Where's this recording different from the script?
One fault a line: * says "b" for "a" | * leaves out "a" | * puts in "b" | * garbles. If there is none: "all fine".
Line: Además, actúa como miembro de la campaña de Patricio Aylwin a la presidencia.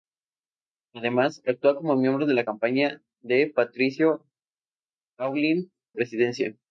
* leaves out "a la"